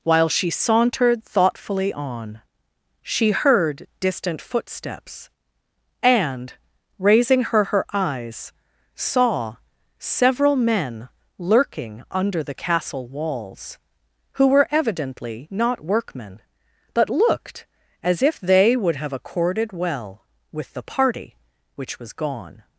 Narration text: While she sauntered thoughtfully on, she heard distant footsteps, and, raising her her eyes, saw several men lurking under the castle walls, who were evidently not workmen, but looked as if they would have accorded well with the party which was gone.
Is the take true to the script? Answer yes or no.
yes